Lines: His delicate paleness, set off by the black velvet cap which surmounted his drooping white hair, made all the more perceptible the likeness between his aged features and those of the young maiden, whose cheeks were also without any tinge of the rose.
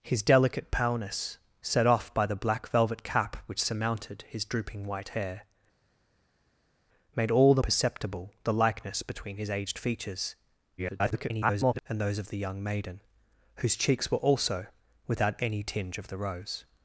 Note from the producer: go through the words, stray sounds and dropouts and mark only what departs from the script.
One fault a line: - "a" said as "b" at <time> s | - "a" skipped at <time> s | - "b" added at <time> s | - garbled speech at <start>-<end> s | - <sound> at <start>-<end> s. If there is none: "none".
- "more" skipped at 7.6 s
- garbled speech at 10.8-11.8 s